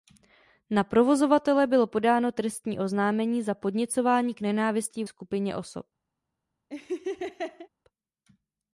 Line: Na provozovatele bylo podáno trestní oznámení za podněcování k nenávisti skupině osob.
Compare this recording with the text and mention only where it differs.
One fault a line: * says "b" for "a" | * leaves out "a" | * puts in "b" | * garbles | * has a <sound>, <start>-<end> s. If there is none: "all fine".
* has a laugh, 6.7-7.7 s